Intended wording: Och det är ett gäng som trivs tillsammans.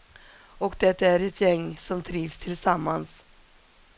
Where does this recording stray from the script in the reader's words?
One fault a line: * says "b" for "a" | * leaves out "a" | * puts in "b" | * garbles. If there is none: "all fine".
all fine